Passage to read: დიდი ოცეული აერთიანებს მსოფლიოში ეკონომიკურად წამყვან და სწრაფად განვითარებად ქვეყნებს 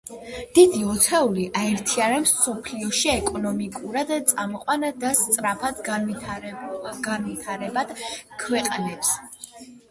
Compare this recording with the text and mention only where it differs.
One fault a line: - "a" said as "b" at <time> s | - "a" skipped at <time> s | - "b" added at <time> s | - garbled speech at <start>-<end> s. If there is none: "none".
none